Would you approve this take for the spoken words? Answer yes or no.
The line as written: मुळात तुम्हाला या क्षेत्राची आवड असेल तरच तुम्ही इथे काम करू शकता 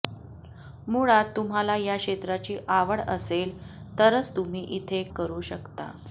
no